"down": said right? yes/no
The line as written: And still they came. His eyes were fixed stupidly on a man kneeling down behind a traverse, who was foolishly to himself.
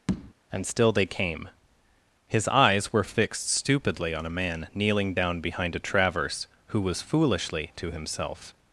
yes